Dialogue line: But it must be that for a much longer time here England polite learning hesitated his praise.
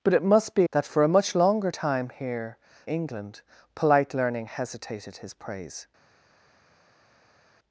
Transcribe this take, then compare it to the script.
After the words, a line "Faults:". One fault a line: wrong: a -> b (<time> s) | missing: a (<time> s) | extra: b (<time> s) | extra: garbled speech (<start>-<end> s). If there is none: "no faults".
But it must be that for a much longer time here England polite learning hesitated his praise.
Faults:
no faults